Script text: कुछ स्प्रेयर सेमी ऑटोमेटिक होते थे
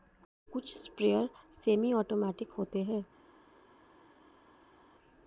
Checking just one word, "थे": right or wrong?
wrong